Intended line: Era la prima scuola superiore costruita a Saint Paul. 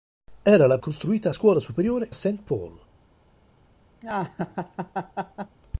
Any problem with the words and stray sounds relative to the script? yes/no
yes